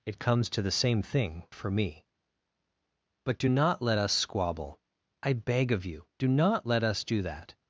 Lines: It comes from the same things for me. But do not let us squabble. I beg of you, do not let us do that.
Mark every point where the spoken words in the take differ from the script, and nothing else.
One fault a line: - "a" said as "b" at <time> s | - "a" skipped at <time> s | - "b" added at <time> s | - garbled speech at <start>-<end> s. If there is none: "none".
- "from" said as "to" at 0.5 s
- "things" said as "thing" at 1.0 s